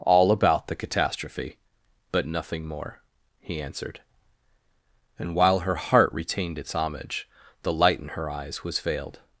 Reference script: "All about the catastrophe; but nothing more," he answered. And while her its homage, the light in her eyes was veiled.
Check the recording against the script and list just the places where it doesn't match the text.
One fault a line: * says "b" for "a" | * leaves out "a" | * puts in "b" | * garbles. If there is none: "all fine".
* puts in "heart retained"